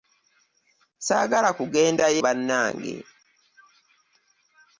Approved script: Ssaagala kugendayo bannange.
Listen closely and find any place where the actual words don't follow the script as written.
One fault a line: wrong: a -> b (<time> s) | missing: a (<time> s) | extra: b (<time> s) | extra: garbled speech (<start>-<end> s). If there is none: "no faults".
no faults